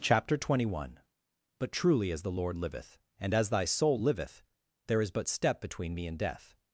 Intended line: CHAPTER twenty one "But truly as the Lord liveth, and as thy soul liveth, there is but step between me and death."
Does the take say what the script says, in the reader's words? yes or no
yes